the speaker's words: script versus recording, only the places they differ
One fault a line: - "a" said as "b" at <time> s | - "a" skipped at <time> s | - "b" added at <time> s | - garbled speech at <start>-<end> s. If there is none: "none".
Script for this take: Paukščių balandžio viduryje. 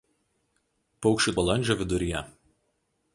none